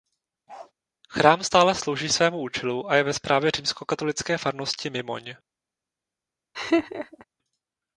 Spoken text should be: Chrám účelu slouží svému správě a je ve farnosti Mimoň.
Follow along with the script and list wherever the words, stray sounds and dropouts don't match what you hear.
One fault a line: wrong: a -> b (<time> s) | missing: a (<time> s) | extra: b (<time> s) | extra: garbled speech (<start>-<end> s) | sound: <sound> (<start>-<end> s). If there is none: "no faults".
sound: bark (0.5-0.7 s)
wrong: účelu -> stále (1.4 s)
wrong: správě -> účelu (2.4 s)
extra: správě římskokatolické (3.1 s)
sound: laugh (6.5-7.2 s)